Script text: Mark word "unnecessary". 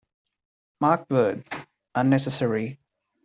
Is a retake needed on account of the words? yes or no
no